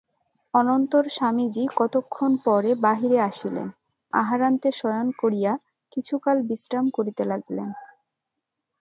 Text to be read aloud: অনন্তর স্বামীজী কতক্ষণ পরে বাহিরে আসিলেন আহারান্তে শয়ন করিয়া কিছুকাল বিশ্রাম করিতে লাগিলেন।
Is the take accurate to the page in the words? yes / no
yes